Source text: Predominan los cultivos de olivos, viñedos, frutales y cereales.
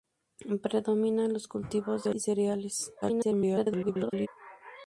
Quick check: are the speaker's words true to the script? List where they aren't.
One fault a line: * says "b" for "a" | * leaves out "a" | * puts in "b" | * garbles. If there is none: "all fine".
* leaves out "olivos viñedos frutales"
* garbles